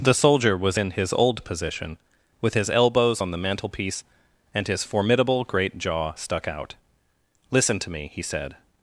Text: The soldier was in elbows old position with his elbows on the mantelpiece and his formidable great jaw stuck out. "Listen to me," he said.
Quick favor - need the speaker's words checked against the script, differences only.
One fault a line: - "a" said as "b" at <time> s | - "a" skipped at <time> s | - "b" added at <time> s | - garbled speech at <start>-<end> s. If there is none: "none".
- "elbows" said as "his" at 0.9 s